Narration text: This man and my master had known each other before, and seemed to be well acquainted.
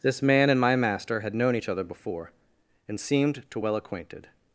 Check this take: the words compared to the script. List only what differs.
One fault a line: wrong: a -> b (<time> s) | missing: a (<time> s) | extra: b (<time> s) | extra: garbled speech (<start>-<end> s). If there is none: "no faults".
missing: be (3.6 s)